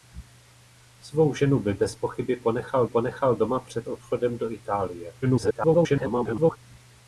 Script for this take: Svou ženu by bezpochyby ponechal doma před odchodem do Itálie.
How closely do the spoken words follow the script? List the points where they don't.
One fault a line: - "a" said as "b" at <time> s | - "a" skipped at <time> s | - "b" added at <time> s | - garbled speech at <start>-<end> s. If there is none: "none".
- "ponechal" added at 2.8 s
- garbled speech at 5.2-6.6 s